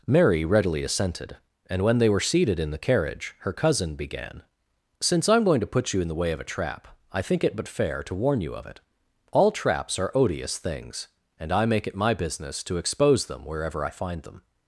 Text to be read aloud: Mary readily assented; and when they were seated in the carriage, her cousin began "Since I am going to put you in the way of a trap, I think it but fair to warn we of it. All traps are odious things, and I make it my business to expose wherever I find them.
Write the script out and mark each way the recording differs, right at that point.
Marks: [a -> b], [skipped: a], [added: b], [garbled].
Mary readily assented; and when they were seated in the carriage, her cousin began "Since I am going to put you in the way of a trap, I think it but fair to warn [we -> you] of it. All traps are odious things, and I make it my business to expose [added: them] wherever I find them.